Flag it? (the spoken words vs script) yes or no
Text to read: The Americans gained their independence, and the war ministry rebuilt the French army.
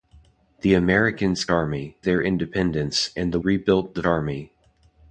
yes